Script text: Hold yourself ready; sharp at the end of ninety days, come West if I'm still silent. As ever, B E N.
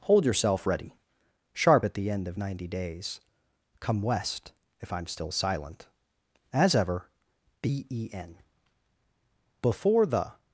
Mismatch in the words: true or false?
true